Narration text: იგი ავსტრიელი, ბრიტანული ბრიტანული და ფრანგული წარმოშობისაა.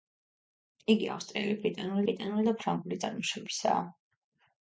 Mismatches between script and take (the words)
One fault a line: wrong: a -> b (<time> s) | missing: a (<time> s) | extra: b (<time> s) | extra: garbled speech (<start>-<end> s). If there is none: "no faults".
no faults